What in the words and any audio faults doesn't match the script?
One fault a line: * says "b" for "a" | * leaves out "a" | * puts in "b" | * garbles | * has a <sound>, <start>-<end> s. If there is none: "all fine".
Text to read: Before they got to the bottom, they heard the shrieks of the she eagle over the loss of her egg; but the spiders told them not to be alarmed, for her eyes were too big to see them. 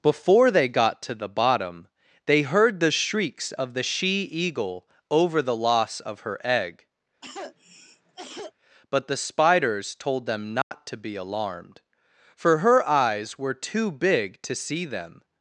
* has a cough, 7.2-8.5 s
* has a dropout, 10.6-10.7 s